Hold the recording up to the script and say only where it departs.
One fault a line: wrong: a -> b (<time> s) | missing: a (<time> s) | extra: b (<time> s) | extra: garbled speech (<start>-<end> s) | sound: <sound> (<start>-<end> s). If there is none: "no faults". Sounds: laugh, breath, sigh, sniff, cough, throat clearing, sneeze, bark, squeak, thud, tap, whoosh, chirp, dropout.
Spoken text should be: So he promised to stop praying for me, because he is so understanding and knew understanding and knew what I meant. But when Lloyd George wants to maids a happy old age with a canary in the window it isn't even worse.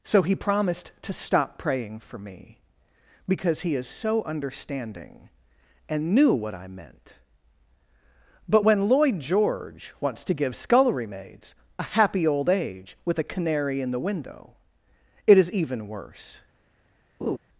missing: understanding and knew (6.3 s)
extra: give scullery (10.3 s)
wrong: isn't -> is (15.4 s)
sound: laugh (17.2-17.4 s)